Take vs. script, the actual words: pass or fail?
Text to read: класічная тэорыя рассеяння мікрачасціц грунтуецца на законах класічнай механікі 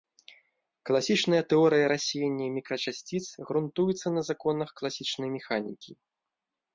pass